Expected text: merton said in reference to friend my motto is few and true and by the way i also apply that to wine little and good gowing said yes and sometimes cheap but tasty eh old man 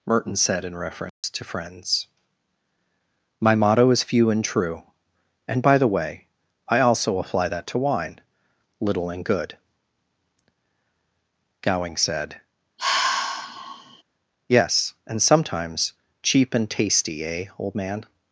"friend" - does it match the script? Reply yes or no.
no